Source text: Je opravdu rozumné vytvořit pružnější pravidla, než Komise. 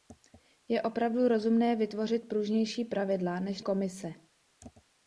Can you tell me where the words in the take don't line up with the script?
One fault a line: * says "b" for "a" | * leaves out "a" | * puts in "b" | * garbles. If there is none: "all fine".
all fine